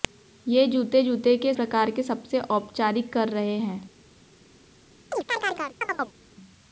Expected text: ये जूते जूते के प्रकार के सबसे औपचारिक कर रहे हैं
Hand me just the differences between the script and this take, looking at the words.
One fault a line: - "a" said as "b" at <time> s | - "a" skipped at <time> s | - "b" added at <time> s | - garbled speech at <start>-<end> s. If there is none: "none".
none